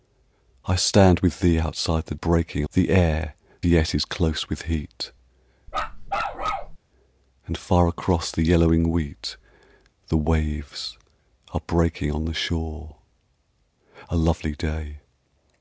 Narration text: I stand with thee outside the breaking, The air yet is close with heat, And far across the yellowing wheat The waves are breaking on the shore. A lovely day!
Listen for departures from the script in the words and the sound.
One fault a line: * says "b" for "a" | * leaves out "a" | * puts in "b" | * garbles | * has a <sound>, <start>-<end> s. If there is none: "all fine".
* has a bark, 5.7-6.8 s